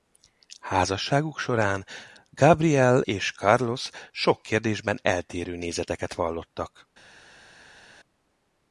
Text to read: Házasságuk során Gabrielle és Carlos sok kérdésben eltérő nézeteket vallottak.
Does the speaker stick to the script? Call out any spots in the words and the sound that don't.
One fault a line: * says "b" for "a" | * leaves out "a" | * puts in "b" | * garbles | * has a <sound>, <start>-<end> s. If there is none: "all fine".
all fine